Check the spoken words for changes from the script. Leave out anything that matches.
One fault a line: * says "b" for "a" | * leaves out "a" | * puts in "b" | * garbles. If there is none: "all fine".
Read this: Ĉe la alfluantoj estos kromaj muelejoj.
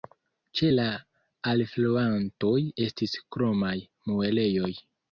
* says "estis" for "estos"